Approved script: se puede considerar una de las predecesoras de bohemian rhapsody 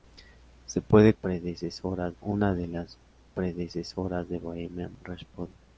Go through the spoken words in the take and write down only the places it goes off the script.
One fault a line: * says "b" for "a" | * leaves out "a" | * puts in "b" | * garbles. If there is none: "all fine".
* says "predecesoras" for "considerar"